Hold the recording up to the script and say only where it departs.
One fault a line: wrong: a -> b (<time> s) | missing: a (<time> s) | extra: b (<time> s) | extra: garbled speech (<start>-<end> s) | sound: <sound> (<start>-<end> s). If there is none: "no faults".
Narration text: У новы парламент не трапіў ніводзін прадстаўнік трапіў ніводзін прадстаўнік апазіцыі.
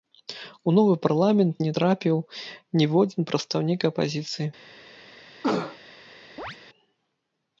missing: трапіў ніводзін прадстаўнік (3.8 s)
sound: cough (5.4-5.8 s)
sound: chirp (6.4-6.6 s)